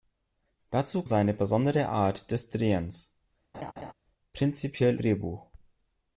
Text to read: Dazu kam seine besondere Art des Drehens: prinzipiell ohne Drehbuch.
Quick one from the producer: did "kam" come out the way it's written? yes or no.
no